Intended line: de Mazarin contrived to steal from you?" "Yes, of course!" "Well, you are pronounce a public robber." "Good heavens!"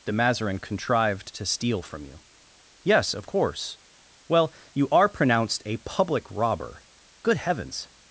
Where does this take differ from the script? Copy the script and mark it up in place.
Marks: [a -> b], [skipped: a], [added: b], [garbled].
de Mazarin contrived to steal from you?" "Yes, of course!" "Well, you are [pronounce -> pronounced] a public robber." "Good heavens!"